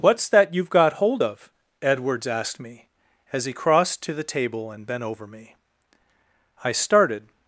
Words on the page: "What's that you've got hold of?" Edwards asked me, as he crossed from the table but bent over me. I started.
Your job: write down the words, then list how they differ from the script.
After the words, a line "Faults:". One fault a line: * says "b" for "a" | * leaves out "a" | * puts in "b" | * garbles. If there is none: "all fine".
"What's that you've got hold of?" Edwards asked me, as he crossed to the table and bent over me. I started.
Faults:
* says "to" for "from"
* says "and" for "but"